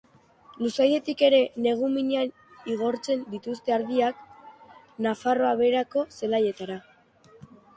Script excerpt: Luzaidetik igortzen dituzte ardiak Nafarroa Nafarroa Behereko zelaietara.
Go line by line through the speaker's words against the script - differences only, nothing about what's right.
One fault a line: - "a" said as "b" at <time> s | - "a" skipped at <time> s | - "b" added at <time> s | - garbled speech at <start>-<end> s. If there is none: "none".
- "ere negu minean" added at 1.3 s
- "Nafarroa" skipped at 5.5 s